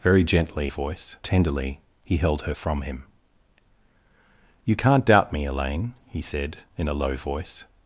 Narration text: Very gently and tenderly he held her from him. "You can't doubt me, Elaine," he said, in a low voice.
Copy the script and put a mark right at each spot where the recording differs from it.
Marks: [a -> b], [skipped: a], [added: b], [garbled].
Very gently [and -> voice] tenderly he held her from him. "You can't doubt me, Elaine," he said, in a low voice.